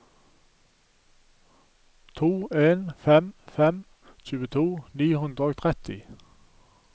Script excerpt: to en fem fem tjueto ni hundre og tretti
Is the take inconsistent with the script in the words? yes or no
no